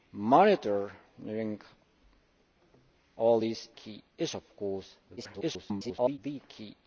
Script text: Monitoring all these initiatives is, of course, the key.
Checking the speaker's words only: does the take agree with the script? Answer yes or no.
no